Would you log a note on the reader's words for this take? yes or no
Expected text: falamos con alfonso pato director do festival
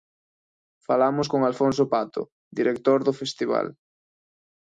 no